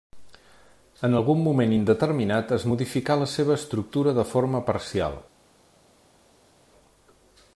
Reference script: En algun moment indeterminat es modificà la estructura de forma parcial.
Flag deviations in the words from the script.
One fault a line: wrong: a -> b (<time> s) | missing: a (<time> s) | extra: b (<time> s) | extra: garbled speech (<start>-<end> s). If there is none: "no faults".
extra: seva (3.4 s)